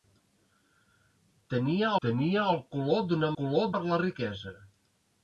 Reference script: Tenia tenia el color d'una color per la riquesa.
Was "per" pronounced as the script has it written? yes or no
yes